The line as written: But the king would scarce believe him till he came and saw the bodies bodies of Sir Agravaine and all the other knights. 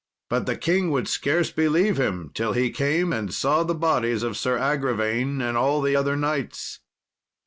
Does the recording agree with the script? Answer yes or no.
no